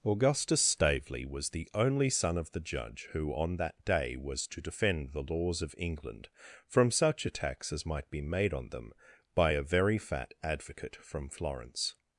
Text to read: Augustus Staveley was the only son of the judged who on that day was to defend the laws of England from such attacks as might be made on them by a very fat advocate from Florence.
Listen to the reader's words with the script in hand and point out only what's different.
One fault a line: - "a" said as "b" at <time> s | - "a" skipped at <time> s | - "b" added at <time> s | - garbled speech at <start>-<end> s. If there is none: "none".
- "judged" said as "judge" at 2.6 s